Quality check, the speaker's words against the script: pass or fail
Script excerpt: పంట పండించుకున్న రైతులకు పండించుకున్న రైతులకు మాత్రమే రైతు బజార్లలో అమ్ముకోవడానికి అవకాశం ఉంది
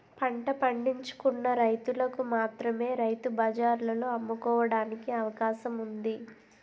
fail